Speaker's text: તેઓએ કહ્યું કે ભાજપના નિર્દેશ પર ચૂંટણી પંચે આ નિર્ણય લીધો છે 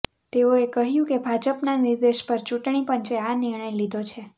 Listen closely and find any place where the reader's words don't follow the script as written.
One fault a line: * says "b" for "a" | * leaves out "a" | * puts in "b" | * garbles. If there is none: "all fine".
all fine